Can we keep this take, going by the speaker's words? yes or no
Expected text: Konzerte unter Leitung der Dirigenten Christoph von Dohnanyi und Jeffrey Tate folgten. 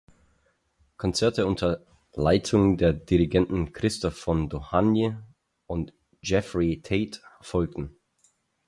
yes